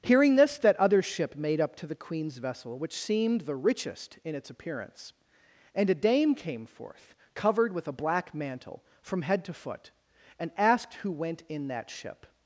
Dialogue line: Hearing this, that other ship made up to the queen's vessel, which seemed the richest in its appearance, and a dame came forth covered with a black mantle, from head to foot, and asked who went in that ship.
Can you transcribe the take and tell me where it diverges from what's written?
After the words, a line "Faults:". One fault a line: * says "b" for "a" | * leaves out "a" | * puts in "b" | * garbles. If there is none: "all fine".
Hearing this, that other ship made up to the queen's vessel, which seemed the richest in its appearance, and a dame came forth covered with a black mantle, from head to foot, and asked who went in that ship.
Faults:
all fine